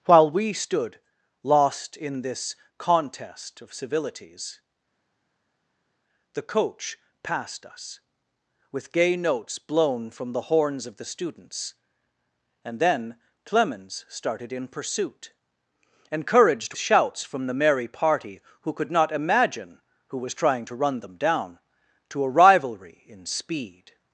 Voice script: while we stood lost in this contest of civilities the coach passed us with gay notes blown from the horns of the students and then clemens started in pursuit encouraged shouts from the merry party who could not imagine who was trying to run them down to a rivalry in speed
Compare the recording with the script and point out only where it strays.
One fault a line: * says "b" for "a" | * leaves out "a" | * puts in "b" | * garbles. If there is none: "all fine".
all fine